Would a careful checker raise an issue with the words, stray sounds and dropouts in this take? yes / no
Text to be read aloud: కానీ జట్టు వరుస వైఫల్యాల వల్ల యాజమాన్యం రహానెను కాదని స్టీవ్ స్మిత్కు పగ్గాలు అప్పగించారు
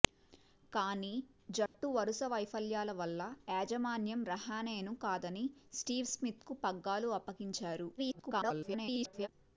yes